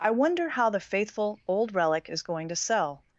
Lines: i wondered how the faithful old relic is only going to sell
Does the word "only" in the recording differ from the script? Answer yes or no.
yes